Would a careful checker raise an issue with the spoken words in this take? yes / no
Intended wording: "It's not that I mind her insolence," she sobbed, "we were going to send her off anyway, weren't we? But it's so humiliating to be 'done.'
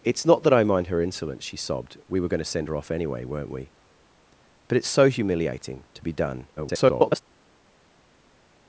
yes